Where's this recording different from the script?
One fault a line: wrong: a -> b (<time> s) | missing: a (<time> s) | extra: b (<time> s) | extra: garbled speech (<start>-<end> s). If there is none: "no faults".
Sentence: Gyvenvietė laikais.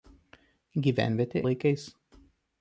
no faults